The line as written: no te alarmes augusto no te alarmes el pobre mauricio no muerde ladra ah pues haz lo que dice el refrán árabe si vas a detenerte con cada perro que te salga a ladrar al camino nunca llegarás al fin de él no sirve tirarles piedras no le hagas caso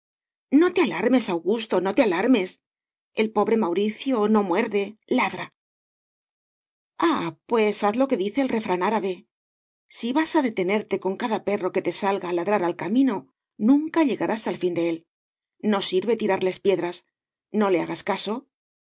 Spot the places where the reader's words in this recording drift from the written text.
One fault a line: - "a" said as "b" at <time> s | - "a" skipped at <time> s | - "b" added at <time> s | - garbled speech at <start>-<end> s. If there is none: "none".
none